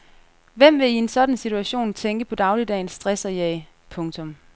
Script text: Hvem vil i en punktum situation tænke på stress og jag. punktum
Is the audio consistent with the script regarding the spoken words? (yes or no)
no